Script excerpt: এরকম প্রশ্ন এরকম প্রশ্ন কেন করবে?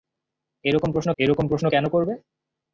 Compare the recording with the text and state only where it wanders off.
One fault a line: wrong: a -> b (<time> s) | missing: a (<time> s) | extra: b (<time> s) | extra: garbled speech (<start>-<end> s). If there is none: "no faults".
no faults